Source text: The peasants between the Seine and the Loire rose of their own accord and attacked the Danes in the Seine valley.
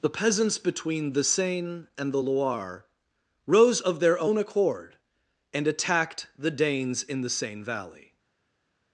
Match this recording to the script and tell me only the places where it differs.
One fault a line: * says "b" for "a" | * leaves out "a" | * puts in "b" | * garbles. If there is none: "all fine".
all fine